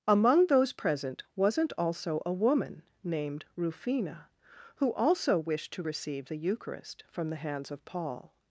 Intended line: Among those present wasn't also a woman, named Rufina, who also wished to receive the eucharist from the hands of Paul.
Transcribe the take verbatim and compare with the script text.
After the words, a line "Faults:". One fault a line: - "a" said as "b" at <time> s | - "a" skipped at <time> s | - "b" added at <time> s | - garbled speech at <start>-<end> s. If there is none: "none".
Among those present wasn't also a woman, named Rufina, who also wished to receive the eucharist from the hands of Paul.
Faults:
none